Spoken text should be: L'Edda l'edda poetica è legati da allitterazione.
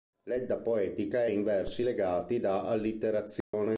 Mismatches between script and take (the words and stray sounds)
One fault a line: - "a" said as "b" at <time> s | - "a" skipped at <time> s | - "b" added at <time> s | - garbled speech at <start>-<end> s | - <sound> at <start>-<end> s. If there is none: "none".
- "l'edda" skipped at 0.6 s
- "in versi" added at 1.3 s
- dropout at 3.4-3.5 s